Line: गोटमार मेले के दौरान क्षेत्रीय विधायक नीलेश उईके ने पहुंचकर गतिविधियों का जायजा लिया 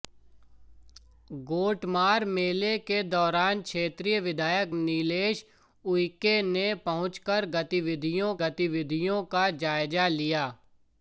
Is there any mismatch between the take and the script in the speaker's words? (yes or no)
yes